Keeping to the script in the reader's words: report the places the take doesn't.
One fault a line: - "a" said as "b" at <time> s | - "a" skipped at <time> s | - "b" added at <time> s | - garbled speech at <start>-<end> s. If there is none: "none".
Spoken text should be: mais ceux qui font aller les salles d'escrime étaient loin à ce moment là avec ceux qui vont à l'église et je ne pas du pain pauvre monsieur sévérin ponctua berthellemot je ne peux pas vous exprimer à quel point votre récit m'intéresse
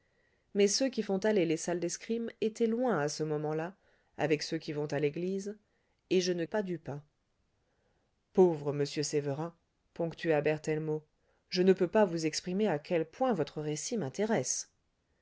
none